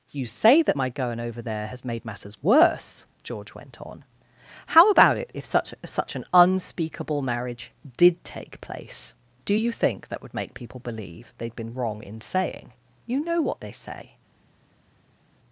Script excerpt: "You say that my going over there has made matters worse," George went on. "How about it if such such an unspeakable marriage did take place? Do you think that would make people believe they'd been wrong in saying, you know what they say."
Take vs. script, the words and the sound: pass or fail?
pass